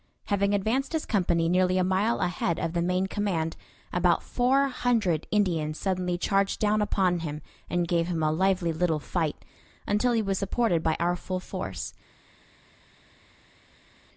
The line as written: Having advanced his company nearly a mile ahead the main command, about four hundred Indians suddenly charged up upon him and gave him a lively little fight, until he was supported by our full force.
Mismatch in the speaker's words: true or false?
true